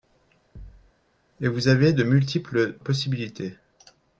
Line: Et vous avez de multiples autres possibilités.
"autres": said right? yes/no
no